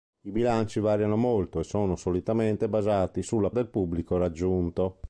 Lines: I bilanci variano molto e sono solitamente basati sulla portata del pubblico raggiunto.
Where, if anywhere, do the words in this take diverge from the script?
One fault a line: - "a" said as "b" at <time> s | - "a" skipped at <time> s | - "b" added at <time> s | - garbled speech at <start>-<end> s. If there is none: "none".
- "portata" skipped at 3.5 s